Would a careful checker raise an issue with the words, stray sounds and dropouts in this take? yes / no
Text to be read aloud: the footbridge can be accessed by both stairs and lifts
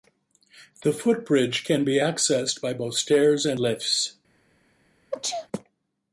yes